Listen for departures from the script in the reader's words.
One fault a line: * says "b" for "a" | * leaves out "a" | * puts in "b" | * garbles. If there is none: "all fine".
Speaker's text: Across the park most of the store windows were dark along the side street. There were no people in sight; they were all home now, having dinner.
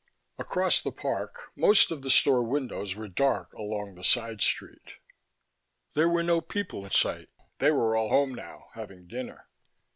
all fine